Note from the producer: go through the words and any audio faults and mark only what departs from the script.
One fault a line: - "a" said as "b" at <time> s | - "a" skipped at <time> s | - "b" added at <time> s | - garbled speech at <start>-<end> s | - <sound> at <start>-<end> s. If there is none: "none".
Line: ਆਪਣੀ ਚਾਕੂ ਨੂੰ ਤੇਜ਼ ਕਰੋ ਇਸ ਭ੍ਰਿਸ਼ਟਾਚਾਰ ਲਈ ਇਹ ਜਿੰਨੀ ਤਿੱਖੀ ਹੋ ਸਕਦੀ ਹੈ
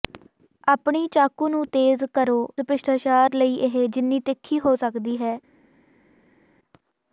- "ਇਸ" skipped at 2.4 s